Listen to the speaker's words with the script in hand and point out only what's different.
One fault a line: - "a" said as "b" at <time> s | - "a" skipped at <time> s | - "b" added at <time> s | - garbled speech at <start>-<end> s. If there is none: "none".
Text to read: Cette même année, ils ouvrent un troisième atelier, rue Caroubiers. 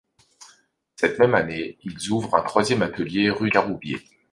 none